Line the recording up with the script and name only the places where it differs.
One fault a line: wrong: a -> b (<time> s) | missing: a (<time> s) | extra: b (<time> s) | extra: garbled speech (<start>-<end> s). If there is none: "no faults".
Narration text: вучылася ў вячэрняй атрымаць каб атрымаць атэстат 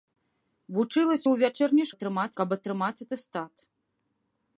no faults